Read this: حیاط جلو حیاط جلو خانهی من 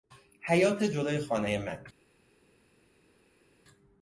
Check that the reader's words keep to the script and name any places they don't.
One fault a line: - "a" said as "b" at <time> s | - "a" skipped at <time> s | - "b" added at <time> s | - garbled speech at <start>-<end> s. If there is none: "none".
- "حیاط جلو" skipped at 1.2 s